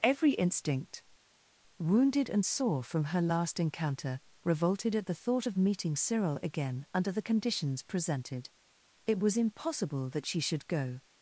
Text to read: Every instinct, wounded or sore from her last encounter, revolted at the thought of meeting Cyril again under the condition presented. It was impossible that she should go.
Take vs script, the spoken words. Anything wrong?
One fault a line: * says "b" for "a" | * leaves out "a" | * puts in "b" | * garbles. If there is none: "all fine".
* says "and" for "or"
* says "conditions" for "condition"